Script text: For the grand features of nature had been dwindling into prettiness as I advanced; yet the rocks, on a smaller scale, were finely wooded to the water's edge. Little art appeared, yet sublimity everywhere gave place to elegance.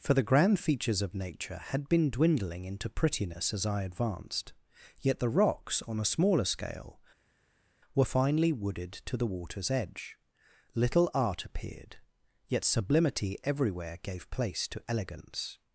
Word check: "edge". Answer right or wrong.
right